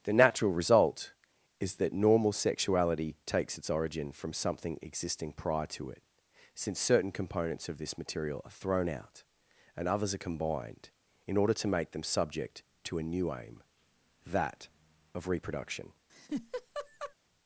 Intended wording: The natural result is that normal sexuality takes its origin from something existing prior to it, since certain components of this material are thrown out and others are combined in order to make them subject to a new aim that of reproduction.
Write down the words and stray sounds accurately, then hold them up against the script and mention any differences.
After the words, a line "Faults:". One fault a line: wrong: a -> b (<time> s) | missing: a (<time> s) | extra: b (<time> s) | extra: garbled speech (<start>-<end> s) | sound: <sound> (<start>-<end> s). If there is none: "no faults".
The natural result is that normal sexuality takes its origin from something existing prior to it, since certain components of this material are thrown out and others are combined in order to make them subject to a new aim that of reproduction.
Faults:
sound: laugh (16.1-17.1 s)